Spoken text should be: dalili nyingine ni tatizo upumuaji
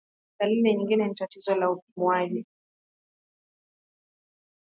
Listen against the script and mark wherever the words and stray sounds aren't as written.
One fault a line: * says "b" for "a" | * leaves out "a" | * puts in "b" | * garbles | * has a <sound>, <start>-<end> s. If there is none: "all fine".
* puts in "la"